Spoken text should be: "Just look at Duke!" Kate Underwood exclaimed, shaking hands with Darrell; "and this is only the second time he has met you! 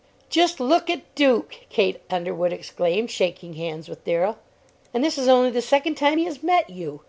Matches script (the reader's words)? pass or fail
pass